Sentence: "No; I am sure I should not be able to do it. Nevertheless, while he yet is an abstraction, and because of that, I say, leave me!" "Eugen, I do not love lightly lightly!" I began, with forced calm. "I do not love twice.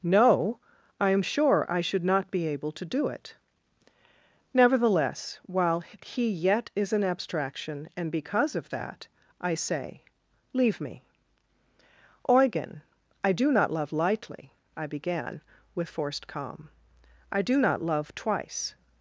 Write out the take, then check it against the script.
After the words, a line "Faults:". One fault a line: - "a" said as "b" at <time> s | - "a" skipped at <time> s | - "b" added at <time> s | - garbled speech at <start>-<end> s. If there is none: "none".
"No; I am sure I should not be able to do it. Nevertheless, while he yet is an abstraction, and because of that, I say, leave me!" "Eugen, I do not love lightly!" I began, with forced calm. "I do not love twice.
Faults:
- "lightly" skipped at 14.5 s